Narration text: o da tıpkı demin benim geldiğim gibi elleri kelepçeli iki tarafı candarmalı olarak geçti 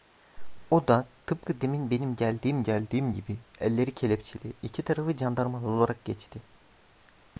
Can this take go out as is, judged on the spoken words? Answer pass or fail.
fail